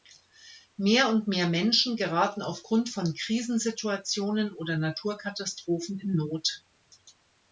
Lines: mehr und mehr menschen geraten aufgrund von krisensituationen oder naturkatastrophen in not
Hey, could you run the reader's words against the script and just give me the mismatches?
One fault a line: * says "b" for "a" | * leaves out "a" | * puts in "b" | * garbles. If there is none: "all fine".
all fine